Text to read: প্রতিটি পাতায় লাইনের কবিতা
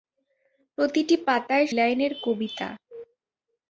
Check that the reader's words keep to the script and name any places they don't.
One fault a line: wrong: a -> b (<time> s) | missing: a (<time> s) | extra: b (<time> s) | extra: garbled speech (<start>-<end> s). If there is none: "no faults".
no faults